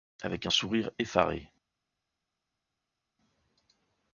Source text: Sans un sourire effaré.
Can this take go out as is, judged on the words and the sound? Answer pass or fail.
fail